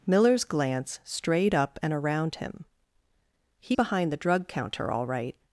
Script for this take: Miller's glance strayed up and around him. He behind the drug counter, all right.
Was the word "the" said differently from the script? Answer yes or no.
no